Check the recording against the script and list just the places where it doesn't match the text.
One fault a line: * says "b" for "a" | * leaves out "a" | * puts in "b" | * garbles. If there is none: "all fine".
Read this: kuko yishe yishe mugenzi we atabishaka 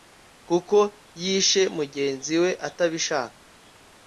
* leaves out "yishe"